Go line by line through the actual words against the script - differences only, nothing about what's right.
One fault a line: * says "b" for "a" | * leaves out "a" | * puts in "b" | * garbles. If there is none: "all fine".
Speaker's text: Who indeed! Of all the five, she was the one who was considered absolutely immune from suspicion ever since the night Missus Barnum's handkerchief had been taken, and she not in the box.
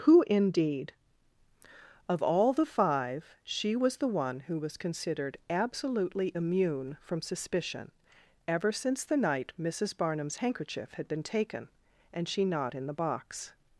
all fine